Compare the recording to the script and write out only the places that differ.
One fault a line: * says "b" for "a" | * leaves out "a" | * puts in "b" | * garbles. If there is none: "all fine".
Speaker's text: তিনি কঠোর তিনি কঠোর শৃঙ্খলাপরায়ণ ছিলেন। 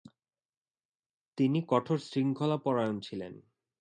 * leaves out "তিনি কঠোর"